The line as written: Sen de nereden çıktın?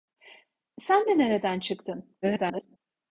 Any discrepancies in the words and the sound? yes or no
yes